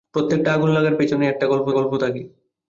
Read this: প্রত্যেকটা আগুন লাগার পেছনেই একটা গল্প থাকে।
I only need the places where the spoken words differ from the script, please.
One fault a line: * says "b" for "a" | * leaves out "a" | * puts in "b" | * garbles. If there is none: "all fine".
* puts in "গল্প"